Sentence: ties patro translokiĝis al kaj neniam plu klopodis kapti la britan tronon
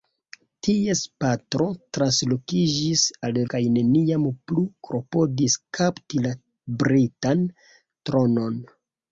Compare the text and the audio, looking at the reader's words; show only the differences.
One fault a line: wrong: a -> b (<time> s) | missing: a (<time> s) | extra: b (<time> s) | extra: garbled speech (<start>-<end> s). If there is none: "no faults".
no faults